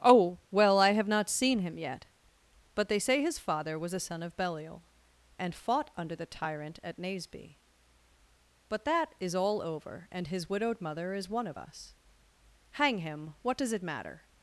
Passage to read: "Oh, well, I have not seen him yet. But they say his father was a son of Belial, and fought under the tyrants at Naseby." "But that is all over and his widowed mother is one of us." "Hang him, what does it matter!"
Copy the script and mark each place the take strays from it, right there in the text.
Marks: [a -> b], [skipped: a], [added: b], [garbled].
"Oh, well, I have not seen him yet. But they say his father was a son of Belial, and fought under the [tyrants -> tyrant] at Naseby." "But that is all over and his widowed mother is one of us." "Hang him, what does it matter!"